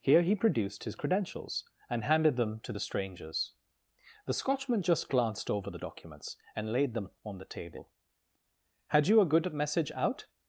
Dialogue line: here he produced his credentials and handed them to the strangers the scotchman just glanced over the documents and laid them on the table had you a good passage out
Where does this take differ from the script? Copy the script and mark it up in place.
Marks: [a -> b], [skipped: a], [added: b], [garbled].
here he produced his credentials and handed them to the strangers the scotchman just glanced over the documents and laid them on the table had you a good [passage -> message] out